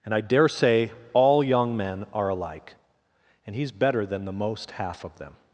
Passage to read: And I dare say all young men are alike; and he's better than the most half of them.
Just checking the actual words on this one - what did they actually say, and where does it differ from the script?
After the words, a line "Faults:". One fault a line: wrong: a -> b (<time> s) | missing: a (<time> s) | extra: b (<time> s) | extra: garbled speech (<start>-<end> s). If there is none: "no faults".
And I dare say all young men are alike; and he's better than the most half of them.
Faults:
no faults